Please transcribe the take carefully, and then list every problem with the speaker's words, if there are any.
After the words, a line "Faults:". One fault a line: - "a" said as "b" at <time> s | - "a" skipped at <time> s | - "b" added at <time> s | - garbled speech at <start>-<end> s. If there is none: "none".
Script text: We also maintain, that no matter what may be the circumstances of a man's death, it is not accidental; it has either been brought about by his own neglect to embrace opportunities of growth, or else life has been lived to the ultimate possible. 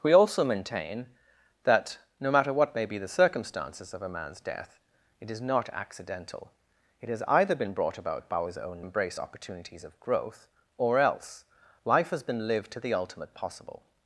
We also maintain, that no matter what may be the circumstances of a man's death, it is not accidental; it has either been brought about by his own embrace opportunities of growth, or else life has been lived to the ultimate possible.
Faults:
- "neglect to" skipped at 8.8 s